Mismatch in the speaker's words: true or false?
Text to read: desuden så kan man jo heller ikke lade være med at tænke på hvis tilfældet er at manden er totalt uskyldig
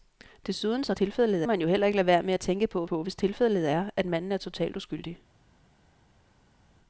true